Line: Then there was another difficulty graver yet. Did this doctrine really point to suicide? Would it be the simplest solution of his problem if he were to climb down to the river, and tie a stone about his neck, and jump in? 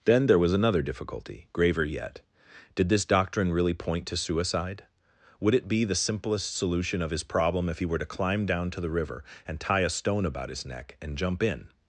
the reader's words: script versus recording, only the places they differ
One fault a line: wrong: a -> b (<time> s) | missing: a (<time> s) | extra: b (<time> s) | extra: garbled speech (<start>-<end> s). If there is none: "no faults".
no faults